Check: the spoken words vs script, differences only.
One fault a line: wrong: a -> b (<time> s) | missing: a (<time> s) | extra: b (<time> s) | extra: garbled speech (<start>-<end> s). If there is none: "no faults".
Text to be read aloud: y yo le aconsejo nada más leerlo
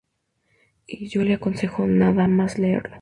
no faults